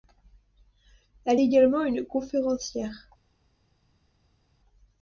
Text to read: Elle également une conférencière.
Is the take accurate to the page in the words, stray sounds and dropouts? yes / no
yes